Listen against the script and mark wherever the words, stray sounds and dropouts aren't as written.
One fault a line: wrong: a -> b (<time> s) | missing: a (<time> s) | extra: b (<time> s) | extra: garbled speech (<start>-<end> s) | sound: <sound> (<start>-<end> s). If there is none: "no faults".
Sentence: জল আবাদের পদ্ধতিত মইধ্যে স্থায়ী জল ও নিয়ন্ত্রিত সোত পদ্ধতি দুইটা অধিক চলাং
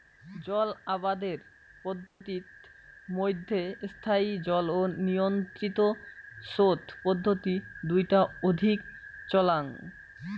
sound: dropout (2.1-2.2 s)